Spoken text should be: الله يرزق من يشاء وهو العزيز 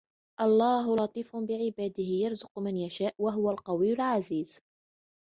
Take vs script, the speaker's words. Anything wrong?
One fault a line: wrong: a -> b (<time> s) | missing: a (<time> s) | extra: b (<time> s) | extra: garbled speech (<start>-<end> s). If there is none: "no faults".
extra: لطيف بعباده (0.9 s)
extra: القوي (3.5 s)